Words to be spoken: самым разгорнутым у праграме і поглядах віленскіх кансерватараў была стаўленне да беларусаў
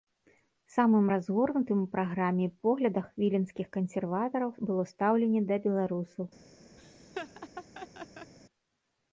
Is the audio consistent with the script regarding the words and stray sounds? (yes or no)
no